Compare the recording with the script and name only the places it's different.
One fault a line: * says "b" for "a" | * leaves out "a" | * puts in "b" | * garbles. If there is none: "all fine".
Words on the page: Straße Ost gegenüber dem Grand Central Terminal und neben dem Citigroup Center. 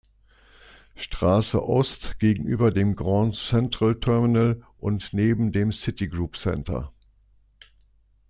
all fine